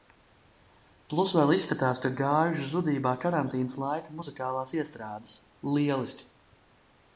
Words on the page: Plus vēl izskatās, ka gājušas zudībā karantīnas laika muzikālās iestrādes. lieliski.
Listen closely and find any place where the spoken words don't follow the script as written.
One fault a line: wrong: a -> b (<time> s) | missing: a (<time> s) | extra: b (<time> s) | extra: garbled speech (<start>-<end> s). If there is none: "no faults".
no faults